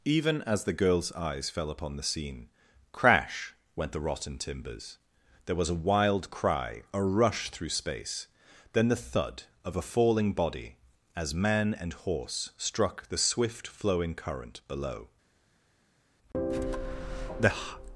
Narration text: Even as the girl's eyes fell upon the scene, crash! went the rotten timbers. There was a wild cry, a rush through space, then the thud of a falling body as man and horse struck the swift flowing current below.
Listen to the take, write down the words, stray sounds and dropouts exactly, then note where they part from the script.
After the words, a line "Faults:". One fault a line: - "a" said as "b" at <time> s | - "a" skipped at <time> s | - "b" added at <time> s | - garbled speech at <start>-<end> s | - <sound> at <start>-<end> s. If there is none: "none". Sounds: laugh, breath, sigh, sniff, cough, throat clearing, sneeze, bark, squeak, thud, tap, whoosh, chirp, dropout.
Even as the girl's eyes fell upon the scene, crash! went the rotten timbers. There was a wild cry, a rush through space, then the thud of a falling body as man and horse struck the swift flowing current below. The
Faults:
- "The" added at 16.3 s